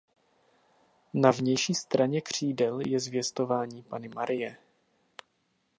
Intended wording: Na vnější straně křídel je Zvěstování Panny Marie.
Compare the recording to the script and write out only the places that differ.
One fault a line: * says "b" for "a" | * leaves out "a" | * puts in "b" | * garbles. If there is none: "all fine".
all fine